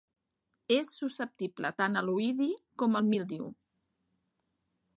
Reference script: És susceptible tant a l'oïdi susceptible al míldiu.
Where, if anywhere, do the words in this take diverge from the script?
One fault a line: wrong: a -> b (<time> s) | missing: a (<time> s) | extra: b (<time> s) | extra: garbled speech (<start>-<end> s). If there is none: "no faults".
wrong: susceptible -> com (2.8 s)